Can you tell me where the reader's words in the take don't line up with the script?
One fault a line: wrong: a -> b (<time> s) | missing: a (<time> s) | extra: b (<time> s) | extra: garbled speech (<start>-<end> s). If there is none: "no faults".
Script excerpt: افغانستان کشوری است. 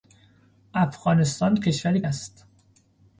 no faults